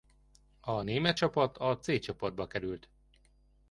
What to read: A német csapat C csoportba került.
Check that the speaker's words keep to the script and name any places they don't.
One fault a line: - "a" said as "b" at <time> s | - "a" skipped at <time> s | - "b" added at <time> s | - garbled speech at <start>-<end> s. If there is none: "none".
- "a" added at 1.6 s